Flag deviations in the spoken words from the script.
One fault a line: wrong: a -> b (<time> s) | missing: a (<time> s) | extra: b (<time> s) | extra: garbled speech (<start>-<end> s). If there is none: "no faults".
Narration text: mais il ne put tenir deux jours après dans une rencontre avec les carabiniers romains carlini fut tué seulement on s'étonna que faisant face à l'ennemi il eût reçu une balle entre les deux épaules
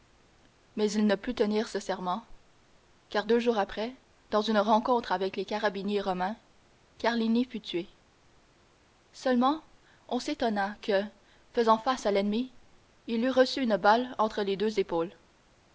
extra: ce serment car (1.7 s)